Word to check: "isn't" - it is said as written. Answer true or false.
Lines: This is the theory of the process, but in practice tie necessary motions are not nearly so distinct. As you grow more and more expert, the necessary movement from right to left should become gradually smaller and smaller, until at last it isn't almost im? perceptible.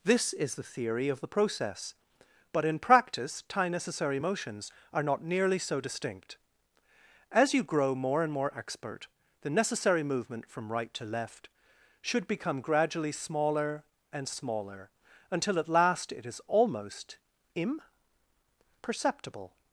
false